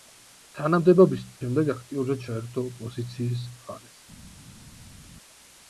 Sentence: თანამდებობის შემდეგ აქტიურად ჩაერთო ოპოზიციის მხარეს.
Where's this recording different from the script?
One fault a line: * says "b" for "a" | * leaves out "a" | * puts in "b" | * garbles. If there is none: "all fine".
all fine